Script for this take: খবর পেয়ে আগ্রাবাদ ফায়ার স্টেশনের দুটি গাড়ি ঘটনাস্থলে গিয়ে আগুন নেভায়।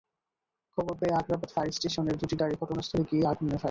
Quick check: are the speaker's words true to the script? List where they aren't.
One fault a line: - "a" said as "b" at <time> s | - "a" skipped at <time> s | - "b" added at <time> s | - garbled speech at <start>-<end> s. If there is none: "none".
none